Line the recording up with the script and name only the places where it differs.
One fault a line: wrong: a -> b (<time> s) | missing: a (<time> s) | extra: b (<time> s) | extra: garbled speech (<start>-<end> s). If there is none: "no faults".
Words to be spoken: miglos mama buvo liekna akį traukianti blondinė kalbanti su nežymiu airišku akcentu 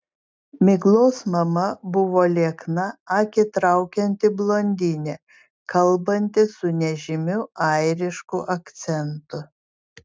no faults